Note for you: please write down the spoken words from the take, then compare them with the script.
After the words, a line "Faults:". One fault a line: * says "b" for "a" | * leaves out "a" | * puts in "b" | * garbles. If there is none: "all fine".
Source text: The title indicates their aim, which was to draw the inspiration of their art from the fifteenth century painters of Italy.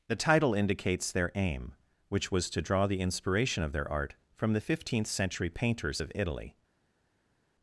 The title indicates their aim, which was to draw the inspiration of their art from the fifteenth century painters of Italy.
Faults:
all fine